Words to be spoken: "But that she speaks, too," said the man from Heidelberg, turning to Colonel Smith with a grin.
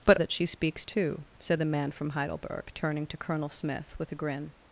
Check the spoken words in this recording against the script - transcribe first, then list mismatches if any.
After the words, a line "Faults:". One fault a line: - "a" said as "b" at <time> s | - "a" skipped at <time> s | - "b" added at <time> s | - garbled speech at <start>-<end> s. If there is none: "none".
"But that she speaks, too," said the man from Heidelberg, turning to Colonel Smith with a grin.
Faults:
none